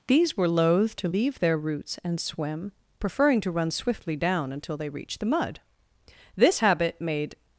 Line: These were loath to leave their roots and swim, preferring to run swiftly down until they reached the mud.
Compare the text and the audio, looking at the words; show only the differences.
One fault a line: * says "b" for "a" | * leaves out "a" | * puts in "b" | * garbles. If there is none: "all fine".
* puts in "This habit made"